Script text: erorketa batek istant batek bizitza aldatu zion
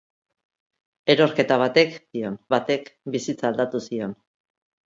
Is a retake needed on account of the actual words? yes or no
yes